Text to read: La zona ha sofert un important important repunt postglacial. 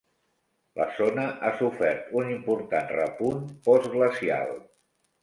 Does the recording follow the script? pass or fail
fail